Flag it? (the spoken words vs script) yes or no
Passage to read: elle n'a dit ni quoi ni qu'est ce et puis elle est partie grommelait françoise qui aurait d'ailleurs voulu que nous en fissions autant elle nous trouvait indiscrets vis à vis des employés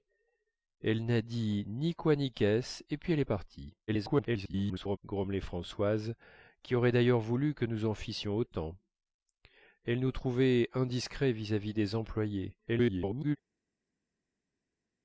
yes